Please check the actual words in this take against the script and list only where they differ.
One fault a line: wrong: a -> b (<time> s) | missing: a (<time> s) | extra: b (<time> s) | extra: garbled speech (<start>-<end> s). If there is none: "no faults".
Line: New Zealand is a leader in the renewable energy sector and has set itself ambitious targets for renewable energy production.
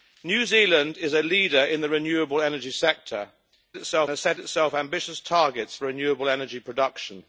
wrong: and -> itself (3.8 s)